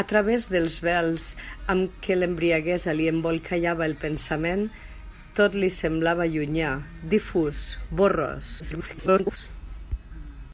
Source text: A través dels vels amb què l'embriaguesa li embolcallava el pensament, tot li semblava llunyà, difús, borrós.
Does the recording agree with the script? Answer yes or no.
no